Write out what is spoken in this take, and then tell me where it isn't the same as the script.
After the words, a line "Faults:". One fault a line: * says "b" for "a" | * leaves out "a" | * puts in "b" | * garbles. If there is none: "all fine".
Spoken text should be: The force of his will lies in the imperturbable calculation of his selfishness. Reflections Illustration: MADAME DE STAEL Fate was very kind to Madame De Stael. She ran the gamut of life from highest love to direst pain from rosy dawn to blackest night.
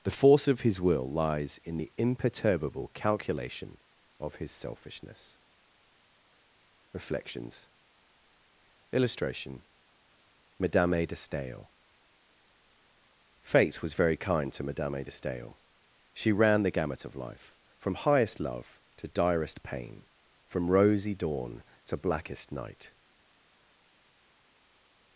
The force of his will lies in the imperturbable calculation of his selfishness. Reflections Illustration: MADAME DE STAEL Fate was very kind to Madame De Stael. She ran the gamut of life from highest love to direst pain from rosy dawn to blackest night.
Faults:
all fine